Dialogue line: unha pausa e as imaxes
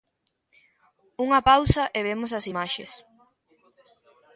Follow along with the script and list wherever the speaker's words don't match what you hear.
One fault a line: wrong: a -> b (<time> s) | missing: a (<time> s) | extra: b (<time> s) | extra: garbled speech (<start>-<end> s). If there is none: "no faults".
extra: vemos (2.1 s)